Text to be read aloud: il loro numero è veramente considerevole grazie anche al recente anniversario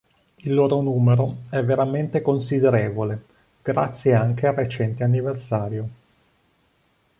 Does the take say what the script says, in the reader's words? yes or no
yes